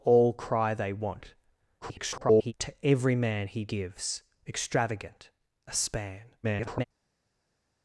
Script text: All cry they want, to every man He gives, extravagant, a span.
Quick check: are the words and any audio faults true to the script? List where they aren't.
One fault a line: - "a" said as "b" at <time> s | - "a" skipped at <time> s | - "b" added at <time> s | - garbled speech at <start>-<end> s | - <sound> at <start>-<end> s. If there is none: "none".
- garbled speech at 1.8-2.5 s
- garbled speech at 6.4-6.8 s